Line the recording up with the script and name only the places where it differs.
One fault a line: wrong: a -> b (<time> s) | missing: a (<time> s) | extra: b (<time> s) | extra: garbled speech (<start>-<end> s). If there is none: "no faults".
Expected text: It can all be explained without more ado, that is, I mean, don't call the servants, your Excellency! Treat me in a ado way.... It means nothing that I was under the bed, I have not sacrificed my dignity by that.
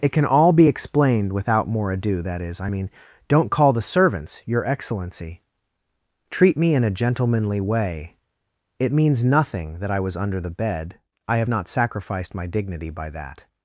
wrong: ado -> gentlemanly (6.9 s)